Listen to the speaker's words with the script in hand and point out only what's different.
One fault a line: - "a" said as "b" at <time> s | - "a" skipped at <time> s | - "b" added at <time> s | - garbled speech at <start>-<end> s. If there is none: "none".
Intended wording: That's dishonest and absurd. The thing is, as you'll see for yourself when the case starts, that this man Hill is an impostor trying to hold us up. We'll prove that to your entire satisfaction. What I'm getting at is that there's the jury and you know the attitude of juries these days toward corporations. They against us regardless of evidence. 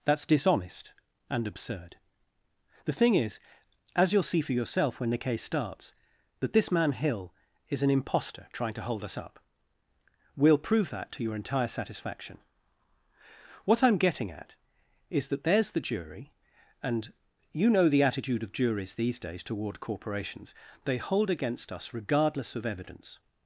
- "hold" added at 21.0 s